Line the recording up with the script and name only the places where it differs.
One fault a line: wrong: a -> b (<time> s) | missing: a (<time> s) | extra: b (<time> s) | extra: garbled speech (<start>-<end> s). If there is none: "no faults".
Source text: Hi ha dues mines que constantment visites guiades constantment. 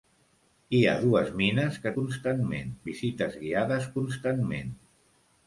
no faults